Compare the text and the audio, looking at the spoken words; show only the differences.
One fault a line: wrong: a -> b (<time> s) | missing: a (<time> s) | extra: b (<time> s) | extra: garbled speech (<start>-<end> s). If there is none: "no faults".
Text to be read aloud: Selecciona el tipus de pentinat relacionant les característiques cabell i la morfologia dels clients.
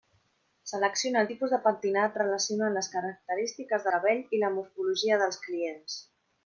no faults